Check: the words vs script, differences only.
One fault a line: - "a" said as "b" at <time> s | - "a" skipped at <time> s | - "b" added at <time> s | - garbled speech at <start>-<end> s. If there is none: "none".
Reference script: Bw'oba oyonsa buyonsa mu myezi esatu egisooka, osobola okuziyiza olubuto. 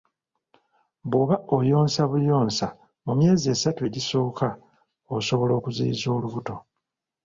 none